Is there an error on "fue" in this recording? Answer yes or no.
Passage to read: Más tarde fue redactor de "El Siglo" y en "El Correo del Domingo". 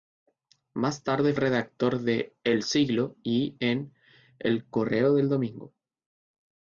yes